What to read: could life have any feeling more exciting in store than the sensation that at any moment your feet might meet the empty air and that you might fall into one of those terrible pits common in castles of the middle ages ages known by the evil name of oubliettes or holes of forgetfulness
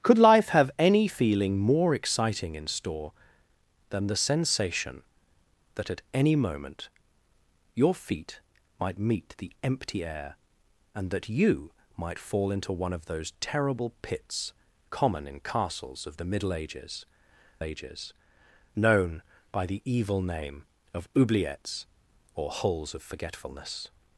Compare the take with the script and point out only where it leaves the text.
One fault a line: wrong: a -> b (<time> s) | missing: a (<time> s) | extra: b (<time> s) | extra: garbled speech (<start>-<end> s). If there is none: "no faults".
no faults